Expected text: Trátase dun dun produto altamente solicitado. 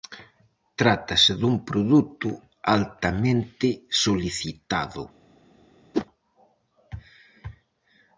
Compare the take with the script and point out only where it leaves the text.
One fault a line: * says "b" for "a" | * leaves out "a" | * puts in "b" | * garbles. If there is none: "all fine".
* leaves out "dun"